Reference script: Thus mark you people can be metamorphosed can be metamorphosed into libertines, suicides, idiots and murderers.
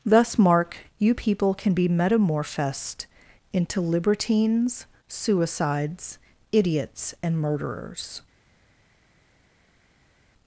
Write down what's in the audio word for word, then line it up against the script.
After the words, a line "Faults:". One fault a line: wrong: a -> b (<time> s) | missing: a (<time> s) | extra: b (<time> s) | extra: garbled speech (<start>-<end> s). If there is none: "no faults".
Thus mark you people can be metamorphosed into libertines, suicides, idiots and murderers.
Faults:
missing: can be metamorphosed (3.1 s)